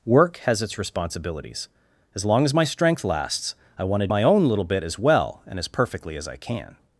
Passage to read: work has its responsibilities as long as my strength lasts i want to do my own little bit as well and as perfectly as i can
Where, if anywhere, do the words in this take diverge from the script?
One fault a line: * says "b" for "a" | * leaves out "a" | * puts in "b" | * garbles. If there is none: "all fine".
* leaves out "do"